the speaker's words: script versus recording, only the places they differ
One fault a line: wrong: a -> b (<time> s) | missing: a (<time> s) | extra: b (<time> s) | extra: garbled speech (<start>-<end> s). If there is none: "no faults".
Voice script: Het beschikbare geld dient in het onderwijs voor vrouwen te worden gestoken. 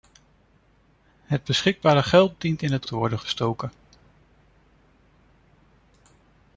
missing: onderwijs voor vrouwen (2.9 s)